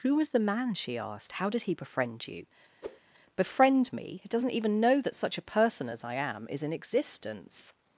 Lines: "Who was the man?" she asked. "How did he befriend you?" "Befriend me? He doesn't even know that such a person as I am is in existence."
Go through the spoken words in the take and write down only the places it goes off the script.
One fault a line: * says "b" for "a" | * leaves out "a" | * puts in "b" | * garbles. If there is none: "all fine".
all fine